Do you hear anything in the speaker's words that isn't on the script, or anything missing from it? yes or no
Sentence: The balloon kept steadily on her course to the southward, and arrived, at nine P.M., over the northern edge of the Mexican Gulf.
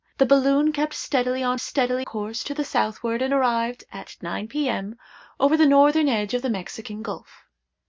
yes